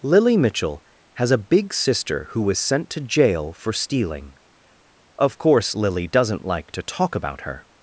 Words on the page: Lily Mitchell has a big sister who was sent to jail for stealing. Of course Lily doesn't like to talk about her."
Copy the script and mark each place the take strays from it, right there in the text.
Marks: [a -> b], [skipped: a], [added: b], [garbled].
Lily Mitchell has a big sister who was sent to jail for stealing. Of course Lily doesn't like to talk about her."